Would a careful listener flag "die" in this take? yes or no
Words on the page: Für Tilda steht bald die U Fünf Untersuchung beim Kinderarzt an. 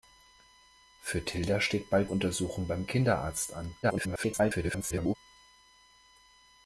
yes